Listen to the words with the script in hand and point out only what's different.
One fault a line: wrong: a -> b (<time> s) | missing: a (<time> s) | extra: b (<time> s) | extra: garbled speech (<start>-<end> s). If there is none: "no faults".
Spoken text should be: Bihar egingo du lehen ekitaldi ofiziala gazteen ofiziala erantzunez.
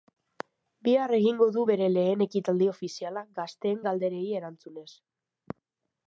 extra: bere (1.7 s)
wrong: ofiziala -> galderei (3.9 s)